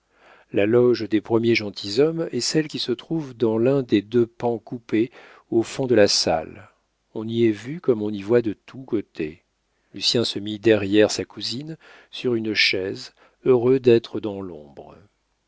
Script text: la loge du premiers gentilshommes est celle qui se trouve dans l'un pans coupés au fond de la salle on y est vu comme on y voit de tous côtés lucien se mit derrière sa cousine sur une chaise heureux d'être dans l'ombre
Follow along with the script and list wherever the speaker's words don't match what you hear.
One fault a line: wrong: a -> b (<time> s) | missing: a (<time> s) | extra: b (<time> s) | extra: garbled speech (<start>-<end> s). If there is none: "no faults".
wrong: du -> des (1.1 s)
extra: des deux (3.8 s)